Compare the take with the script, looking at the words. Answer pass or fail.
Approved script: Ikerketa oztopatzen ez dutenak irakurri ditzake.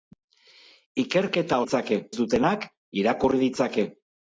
fail